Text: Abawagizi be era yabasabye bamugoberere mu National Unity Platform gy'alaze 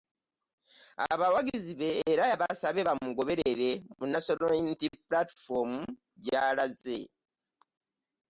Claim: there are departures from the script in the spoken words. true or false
false